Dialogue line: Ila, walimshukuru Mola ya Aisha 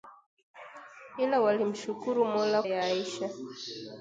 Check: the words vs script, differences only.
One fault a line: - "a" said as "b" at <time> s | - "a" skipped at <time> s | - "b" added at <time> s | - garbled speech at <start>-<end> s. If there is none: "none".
none